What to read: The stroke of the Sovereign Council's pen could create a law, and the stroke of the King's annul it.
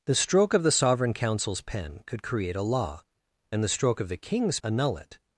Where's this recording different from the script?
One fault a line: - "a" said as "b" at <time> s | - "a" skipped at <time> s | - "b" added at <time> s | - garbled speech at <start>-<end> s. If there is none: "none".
none